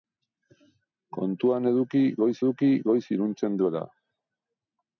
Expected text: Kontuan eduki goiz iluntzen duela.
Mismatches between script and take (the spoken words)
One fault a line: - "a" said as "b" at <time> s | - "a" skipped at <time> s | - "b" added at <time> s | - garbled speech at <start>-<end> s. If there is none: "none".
- "eduki goiz" added at 2.4 s